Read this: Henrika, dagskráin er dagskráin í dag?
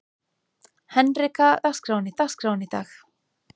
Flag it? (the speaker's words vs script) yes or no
no